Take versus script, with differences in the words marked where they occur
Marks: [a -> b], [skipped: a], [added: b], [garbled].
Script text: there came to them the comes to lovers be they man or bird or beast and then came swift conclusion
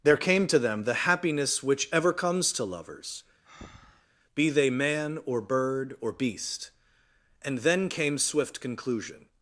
there came to them the [added: happiness which ever] comes to lovers be they man or bird or beast and then came swift conclusion